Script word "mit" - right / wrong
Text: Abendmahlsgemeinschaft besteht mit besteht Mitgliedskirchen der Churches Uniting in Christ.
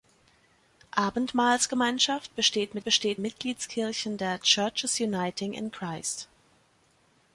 right